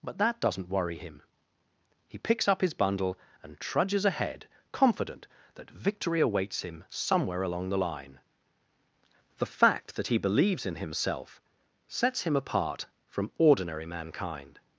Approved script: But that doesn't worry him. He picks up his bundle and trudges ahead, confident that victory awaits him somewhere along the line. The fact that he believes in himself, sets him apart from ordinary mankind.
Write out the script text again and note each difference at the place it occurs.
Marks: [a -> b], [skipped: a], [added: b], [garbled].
But that doesn't worry him. He picks up his bundle and trudges ahead, confident that victory awaits him somewhere along the line. The fact that he believes in himself, sets him apart from ordinary mankind.